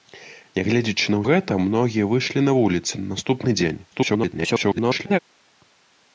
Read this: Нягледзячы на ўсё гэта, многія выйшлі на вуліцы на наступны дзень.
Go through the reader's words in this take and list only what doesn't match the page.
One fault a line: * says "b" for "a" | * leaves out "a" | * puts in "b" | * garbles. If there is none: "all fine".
* leaves out "ўсё"
* garbles